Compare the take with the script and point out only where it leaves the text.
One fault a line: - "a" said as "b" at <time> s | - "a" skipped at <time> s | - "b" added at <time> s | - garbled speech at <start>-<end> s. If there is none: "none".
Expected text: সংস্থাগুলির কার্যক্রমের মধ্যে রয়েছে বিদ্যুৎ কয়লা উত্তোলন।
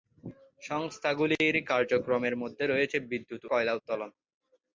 none